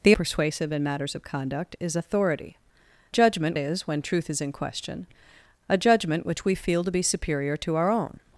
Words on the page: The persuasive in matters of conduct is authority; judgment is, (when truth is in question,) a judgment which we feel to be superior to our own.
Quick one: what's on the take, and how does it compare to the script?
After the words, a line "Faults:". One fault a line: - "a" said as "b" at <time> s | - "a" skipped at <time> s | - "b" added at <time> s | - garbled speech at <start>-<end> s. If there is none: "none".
The persuasive in matters of conduct is authority; judgment is, (when truth is in question,) a judgment which we feel to be superior to our own.
Faults:
none